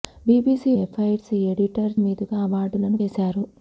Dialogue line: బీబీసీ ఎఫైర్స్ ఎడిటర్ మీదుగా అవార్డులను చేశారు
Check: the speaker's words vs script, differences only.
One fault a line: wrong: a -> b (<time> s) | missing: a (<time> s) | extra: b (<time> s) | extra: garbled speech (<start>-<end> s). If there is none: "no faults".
no faults